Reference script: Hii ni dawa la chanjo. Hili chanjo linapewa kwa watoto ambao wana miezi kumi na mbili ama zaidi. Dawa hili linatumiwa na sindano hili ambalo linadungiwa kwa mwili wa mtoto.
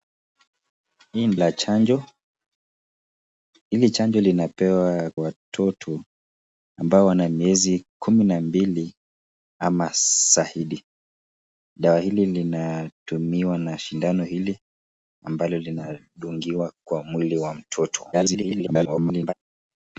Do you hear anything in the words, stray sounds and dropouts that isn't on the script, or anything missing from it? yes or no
yes